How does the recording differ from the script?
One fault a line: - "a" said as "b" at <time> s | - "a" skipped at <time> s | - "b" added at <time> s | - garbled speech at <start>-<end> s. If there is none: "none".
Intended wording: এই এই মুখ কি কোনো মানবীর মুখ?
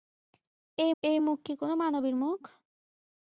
none